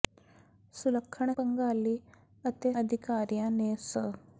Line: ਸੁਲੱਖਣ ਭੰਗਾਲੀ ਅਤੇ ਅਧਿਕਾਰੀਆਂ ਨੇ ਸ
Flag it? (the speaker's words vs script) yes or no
no